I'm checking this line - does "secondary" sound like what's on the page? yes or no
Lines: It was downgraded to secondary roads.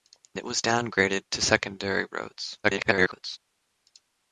yes